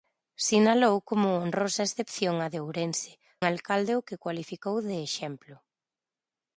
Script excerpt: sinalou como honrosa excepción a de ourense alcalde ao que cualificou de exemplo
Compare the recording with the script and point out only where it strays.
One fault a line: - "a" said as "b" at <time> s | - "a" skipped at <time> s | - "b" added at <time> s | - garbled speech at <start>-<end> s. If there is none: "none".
none